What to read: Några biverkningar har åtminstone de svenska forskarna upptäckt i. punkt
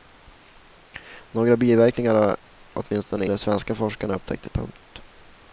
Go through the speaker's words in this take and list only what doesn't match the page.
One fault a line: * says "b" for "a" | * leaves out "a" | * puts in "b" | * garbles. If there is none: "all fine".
all fine